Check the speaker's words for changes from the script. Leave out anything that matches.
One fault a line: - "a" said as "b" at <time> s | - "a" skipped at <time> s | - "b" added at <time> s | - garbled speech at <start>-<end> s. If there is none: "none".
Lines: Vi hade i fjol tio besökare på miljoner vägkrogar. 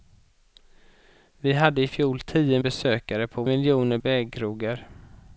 none